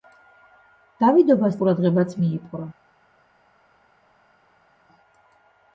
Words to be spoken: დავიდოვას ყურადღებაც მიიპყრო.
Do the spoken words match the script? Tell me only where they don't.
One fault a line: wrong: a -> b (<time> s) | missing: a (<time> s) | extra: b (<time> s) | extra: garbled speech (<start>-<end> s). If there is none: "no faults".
no faults